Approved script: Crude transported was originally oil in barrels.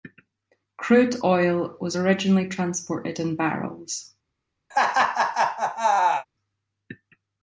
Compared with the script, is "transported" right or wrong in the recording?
wrong